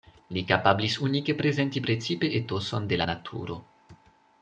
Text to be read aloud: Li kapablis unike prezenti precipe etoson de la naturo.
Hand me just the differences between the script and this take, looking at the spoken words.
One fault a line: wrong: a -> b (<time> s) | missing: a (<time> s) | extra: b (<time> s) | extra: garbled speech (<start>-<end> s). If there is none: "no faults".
no faults